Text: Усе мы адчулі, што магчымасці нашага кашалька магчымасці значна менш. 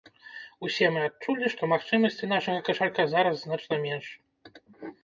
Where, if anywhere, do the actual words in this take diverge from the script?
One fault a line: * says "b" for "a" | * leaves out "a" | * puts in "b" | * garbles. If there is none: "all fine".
* says "зараз" for "магчымасці"